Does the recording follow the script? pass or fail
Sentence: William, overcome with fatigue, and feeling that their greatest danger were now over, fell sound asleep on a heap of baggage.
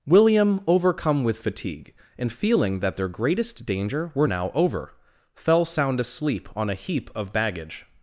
pass